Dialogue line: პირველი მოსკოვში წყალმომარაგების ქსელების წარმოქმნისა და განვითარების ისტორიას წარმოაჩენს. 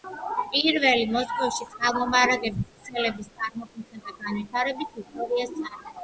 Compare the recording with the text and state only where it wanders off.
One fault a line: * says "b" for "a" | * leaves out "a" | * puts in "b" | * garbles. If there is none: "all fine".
all fine